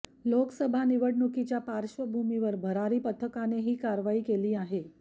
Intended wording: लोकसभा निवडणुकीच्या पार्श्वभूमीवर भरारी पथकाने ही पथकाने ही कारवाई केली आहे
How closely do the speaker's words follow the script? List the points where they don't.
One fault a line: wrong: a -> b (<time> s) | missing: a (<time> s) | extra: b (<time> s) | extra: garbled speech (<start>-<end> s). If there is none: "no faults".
missing: पथकाने ही (3.7 s)